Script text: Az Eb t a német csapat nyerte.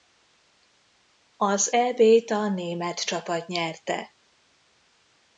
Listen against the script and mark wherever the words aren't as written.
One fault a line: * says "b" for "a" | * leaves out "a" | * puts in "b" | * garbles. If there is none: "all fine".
all fine